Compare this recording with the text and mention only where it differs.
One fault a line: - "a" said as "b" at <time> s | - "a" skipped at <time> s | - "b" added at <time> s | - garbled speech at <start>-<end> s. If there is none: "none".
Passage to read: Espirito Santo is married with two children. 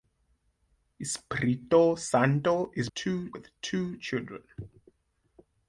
- "married" said as "two" at 2.9 s